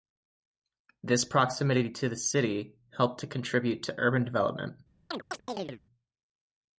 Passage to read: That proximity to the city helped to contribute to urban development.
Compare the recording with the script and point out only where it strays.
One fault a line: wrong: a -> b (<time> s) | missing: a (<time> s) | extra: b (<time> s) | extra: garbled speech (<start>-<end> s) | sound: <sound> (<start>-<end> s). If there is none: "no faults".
wrong: That -> This (1.0 s)
sound: chirp (5.1-5.8 s)